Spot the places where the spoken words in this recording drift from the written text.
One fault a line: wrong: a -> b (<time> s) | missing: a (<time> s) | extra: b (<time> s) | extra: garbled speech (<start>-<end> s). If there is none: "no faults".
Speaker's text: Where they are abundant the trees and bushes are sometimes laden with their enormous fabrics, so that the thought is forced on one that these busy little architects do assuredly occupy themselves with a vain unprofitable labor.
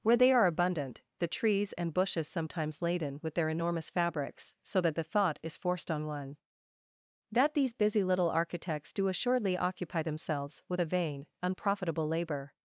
missing: are (2.3 s)